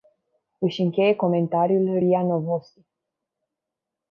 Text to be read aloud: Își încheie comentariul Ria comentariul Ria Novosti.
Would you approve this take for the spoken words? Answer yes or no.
no